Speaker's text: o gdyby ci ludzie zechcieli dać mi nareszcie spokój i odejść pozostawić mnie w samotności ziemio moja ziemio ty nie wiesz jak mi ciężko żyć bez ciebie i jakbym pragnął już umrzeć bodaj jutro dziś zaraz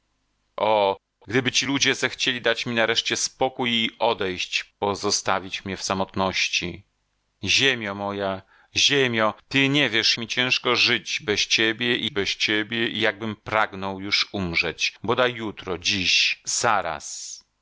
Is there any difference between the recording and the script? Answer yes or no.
yes